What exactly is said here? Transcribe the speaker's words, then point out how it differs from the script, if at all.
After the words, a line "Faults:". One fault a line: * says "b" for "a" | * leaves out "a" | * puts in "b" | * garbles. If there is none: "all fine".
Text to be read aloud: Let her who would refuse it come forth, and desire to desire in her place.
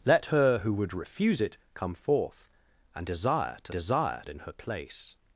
Let her who would refuse it come forth, and desire to desire in her place.
Faults:
all fine